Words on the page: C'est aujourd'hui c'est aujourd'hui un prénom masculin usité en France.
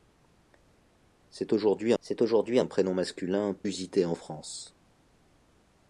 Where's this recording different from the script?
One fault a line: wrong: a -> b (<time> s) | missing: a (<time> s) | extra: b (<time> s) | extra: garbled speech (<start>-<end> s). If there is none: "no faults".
no faults